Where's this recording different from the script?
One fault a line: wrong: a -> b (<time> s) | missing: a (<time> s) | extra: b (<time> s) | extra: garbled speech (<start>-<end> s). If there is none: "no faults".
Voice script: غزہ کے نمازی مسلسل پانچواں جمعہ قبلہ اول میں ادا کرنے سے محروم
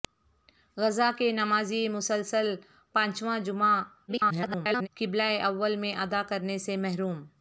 extra: garbled speech (4.1-4.9 s)